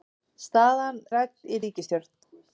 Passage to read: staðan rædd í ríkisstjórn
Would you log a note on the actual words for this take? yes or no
no